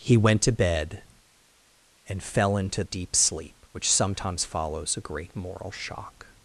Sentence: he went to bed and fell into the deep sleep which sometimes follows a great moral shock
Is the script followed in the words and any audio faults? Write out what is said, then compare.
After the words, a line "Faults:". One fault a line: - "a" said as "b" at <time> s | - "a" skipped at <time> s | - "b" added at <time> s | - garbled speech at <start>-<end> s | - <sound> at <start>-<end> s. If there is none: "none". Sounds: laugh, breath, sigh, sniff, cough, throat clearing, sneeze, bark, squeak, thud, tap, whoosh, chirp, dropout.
he went to bed and fell into deep sleep which sometimes follows a great moral shock
Faults:
- "the" skipped at 2.8 s